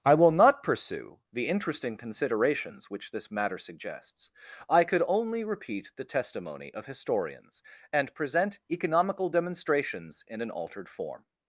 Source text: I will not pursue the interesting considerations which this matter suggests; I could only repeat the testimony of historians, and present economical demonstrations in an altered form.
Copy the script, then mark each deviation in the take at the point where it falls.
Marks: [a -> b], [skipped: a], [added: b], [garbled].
I will not pursue the interesting considerations which this matter suggests; I could only repeat the testimony of historians, and present economical demonstrations in an altered form.